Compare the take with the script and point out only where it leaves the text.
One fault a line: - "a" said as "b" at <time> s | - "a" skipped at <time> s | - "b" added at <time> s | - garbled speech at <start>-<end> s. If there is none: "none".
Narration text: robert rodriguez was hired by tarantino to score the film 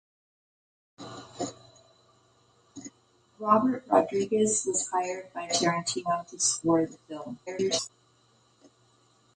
- garbled speech at 7.5-7.9 s